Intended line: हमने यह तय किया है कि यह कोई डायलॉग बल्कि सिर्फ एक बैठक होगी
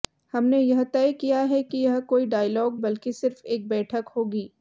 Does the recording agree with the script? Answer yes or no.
yes